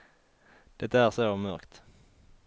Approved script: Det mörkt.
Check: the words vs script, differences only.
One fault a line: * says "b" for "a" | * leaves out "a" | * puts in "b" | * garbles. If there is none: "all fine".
* puts in "är så"